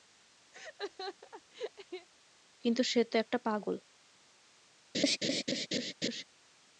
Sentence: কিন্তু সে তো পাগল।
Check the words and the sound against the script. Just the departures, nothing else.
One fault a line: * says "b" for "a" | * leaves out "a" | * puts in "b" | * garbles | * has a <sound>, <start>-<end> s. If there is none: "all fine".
* has a laugh, 0.5-2.1 s
* puts in "একটা"
* has a laugh, 4.9-6.2 s